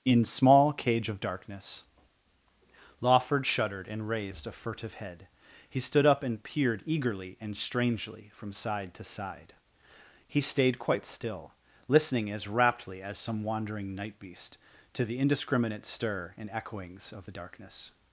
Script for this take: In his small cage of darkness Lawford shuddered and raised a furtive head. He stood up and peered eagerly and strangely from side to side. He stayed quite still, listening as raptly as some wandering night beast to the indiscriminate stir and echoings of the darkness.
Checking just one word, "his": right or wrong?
wrong